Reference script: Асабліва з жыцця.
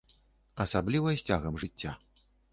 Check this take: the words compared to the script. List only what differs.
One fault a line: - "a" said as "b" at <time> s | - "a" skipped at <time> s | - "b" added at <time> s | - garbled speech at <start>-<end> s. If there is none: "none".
- "цягам" added at 1.3 s